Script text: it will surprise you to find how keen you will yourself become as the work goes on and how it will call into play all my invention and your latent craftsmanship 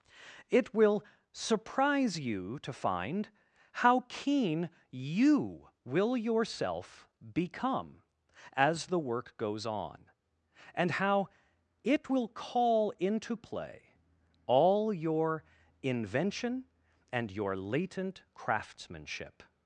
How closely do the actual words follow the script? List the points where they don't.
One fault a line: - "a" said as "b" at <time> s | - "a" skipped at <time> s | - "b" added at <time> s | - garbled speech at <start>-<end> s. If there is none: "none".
- "my" said as "your" at 14.9 s